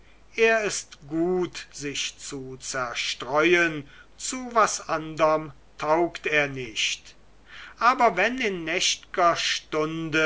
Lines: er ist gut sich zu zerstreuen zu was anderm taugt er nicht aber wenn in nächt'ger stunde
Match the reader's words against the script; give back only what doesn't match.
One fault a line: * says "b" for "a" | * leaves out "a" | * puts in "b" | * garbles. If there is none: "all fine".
all fine